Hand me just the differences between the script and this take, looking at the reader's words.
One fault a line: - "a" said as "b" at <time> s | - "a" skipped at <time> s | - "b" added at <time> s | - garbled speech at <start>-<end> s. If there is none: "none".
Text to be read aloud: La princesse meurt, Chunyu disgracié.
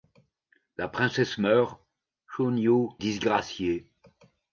none